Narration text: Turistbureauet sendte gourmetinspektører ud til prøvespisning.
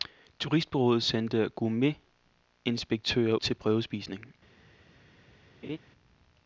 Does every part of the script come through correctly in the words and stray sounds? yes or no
no